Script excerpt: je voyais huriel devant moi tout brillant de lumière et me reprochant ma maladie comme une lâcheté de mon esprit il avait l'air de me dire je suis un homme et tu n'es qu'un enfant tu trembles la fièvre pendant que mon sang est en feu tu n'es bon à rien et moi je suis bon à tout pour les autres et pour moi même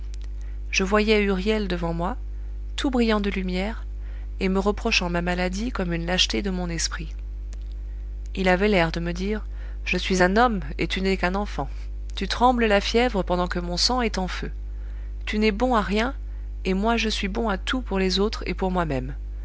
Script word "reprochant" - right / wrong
right